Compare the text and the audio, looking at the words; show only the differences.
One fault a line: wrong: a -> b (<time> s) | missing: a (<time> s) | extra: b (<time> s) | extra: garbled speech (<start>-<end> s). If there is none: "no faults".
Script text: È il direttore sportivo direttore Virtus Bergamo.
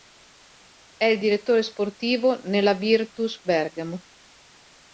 wrong: direttore -> nella (2.5 s)